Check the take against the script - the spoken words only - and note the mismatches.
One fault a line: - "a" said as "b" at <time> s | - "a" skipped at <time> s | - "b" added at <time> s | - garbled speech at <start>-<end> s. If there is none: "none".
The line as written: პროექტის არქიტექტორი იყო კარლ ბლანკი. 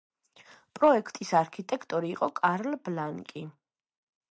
none